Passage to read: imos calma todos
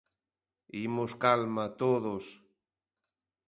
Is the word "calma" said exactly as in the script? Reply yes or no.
yes